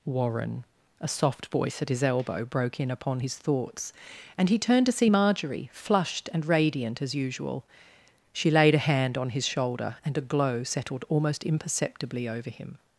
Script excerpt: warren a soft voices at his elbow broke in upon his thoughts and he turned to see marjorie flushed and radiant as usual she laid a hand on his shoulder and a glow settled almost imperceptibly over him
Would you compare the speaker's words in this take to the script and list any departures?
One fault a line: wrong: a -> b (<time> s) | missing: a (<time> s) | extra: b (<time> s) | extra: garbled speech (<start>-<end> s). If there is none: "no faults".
wrong: voices -> voice (1.4 s)